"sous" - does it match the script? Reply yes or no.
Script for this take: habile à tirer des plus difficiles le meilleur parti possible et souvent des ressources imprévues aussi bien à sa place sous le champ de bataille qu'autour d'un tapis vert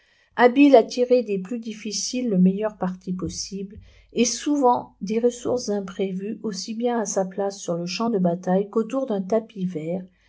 no